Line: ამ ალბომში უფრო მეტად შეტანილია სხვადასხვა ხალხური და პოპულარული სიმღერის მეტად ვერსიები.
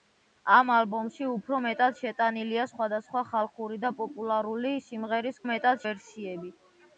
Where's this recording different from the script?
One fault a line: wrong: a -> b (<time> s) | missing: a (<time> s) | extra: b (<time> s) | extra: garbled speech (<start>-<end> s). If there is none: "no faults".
no faults